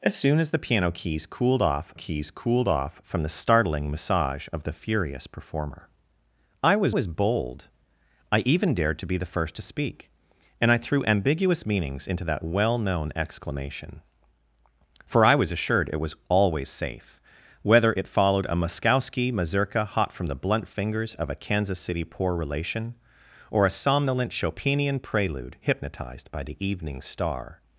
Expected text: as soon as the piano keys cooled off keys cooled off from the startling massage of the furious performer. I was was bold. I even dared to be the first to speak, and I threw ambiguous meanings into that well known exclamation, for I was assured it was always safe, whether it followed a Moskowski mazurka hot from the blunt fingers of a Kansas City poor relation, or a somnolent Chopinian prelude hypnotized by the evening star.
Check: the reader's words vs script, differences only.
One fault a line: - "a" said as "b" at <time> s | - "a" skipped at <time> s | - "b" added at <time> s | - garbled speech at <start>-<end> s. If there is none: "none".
none